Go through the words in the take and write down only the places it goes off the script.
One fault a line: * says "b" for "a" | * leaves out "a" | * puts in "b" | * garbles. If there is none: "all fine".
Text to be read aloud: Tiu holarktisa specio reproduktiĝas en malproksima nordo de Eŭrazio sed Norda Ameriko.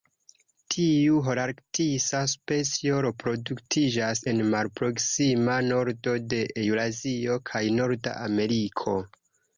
* says "kaj" for "sed"